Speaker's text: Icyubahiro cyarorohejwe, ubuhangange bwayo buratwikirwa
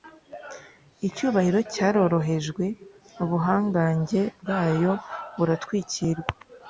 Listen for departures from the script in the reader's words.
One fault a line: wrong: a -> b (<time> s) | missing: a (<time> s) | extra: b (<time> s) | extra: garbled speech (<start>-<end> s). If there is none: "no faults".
no faults